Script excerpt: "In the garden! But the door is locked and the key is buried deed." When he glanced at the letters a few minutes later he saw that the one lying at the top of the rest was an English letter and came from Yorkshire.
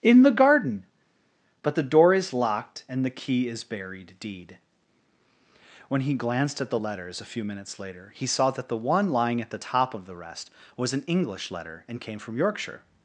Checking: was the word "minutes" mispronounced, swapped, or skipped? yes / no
no